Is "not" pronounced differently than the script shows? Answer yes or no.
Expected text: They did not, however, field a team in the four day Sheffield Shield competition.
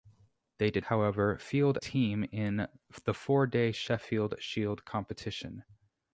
yes